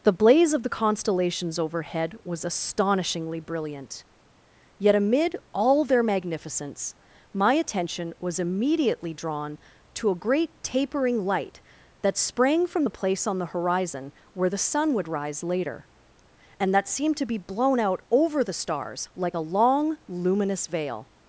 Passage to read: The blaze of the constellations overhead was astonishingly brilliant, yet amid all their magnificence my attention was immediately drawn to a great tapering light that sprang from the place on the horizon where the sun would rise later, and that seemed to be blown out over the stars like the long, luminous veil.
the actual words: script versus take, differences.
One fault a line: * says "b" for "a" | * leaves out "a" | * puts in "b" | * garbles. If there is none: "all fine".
* says "a" for "the"